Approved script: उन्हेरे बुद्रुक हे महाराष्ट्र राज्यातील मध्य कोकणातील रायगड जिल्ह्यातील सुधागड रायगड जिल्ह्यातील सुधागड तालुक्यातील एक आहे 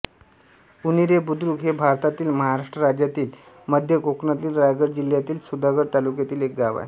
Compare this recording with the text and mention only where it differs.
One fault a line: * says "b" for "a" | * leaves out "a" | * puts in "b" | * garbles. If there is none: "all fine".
* puts in "भारतातील"
* leaves out "रायगड जिल्ह्यातील सुधागड"
* puts in "गाव"